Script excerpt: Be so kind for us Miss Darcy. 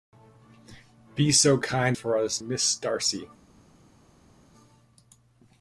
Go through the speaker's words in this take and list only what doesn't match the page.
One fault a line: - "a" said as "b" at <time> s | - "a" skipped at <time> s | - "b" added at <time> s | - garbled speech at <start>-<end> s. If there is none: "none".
none